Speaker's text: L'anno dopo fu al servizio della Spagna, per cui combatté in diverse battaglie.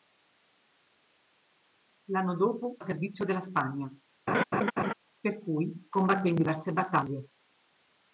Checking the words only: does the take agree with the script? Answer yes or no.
no